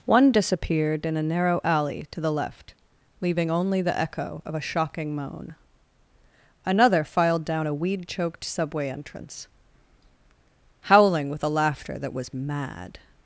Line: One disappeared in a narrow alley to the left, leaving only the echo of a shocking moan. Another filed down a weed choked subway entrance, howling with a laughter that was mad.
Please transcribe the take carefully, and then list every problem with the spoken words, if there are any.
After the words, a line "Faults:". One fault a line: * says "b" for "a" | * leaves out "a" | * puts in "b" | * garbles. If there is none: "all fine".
One disappeared in a narrow alley to the left, leaving only the echo of a shocking moan. Another filed down a weed choked subway entrance, howling with a laughter that was mad.
Faults:
all fine